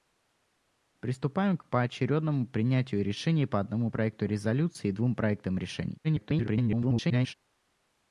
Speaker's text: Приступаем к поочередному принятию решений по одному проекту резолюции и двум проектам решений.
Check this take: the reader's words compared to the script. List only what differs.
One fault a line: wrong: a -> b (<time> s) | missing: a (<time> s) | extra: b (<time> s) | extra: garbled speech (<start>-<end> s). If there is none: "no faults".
extra: garbled speech (6.0-7.3 s)